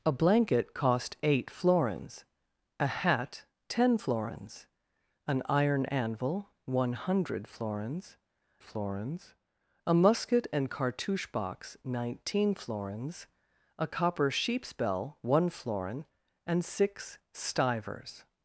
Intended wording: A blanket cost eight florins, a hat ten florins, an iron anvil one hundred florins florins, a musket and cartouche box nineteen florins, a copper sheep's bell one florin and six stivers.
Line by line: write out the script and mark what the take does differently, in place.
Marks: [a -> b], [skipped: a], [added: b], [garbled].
A blanket cost eight florins, a hat ten florins, an iron anvil one hundred florins florins, a musket and cartouche box nineteen florins, a copper sheep's bell one florin and six stivers.